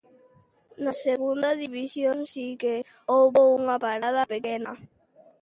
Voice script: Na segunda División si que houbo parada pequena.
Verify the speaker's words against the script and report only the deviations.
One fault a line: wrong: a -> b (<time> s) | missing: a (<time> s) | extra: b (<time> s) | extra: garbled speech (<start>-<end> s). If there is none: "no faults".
extra: unha (3.6 s)